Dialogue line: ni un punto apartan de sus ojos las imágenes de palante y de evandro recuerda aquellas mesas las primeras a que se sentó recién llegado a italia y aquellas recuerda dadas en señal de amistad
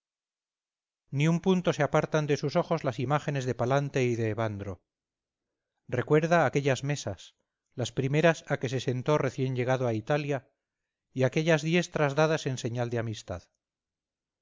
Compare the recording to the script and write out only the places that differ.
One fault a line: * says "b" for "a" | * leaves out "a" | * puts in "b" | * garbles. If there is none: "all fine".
* puts in "se"
* says "diestras" for "recuerda"